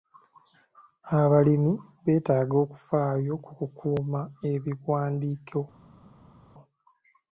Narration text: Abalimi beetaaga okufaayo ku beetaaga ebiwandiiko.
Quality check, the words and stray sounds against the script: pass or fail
fail